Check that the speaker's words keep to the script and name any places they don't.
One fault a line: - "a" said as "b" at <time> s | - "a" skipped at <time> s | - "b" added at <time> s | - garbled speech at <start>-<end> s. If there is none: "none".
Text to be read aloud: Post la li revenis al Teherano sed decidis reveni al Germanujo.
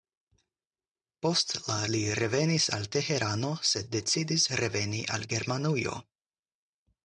none